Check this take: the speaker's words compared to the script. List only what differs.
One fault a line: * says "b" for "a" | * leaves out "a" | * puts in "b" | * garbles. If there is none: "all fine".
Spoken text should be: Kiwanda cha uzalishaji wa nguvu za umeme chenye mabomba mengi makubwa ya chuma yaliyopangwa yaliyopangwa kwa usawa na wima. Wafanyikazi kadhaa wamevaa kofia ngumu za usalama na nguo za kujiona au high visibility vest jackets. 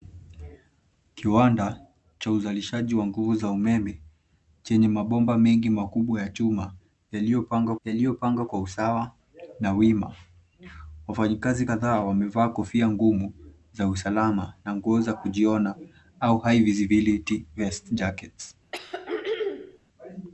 all fine